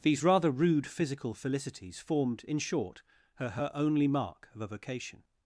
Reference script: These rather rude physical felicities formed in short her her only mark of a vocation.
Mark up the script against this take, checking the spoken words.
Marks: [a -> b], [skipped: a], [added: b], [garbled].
These rather rude physical felicities formed in short her her only mark of a vocation.